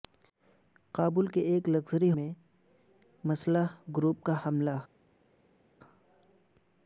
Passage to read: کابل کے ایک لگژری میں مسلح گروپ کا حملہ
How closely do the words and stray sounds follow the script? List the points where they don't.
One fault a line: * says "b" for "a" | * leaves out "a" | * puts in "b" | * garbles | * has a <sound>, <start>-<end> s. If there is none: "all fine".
all fine